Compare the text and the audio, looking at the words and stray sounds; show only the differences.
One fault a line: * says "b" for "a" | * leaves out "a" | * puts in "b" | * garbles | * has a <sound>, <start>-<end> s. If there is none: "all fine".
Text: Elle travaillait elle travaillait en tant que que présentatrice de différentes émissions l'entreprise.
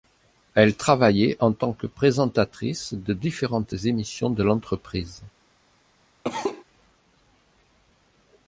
* leaves out "elle travaillait"
* leaves out "que"
* puts in "de"
* has a cough, 6.2-6.6 s